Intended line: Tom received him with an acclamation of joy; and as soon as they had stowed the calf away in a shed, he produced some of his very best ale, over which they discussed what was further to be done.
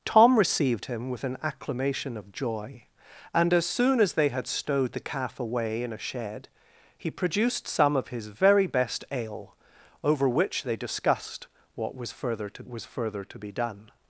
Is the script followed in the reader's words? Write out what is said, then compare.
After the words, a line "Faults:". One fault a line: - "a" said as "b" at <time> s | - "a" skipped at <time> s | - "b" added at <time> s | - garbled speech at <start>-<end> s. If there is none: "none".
Tom received him with an acclamation of joy; and as soon as they had stowed the calf away in a shed, he produced some of his very best ale, over which they discussed what was further to was further to be done.
Faults:
- "was further to" added at 12.7 s